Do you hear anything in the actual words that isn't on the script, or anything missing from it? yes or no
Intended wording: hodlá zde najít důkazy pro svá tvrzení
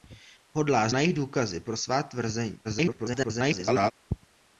yes